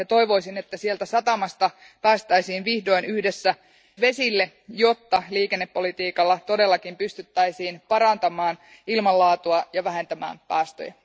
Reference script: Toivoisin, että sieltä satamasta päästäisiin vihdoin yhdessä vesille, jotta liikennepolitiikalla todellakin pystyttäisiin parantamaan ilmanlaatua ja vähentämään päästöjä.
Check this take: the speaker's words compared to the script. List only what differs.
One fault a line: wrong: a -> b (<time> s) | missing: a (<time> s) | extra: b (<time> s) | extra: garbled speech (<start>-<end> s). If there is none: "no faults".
no faults